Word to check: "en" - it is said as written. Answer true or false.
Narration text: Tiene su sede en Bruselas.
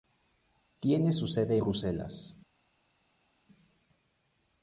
false